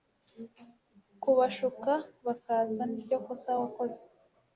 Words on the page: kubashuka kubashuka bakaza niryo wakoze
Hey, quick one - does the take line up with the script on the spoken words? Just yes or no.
no